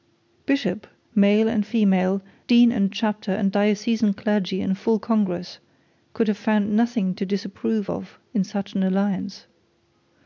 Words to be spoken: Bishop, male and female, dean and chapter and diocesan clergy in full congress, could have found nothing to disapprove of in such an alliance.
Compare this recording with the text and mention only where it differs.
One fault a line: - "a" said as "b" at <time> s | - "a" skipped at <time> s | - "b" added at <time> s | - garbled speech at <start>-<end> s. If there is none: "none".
none